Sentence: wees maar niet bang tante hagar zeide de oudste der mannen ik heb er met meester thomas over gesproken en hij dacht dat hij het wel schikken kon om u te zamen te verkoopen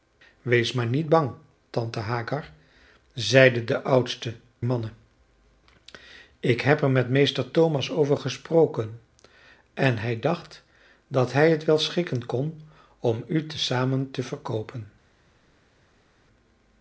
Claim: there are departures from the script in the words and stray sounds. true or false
true